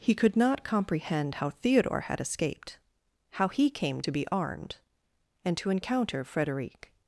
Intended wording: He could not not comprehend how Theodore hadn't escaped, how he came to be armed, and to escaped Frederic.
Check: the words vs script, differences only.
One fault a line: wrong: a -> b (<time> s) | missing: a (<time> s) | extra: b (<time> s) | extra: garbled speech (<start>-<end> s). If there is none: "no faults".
missing: not (0.6 s)
wrong: hadn't -> had (2.0 s)
wrong: escaped -> encounter (5.7 s)